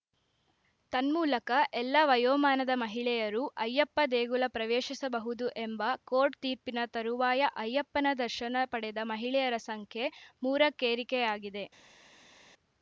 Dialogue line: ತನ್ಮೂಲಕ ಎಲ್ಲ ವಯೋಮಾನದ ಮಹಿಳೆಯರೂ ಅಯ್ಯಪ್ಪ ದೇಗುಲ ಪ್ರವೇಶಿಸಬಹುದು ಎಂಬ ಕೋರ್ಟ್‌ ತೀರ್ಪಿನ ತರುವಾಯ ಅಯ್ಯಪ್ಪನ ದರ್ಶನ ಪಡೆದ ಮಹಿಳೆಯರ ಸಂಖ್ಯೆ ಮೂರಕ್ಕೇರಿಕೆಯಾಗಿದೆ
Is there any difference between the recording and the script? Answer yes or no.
no